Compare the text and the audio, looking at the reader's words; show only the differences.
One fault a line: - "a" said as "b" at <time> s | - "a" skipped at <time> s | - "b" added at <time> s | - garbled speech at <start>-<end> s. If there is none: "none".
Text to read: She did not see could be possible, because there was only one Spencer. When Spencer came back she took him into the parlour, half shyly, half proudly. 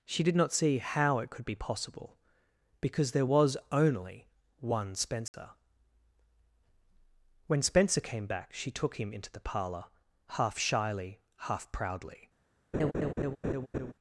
- "how it" added at 0.8 s